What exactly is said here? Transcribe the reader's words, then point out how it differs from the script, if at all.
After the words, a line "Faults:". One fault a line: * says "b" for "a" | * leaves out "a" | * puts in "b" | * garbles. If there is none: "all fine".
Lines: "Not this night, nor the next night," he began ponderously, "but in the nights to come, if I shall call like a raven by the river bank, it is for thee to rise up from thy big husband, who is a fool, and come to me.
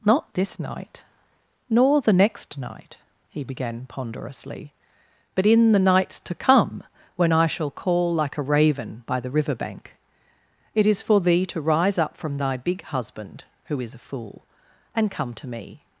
"Not this night, nor the next night," he began ponderously, "but in the nights to come, when I shall call like a raven by the river bank, it is for thee to rise up from thy big husband, who is a fool, and come to me.
Faults:
* says "when" for "if"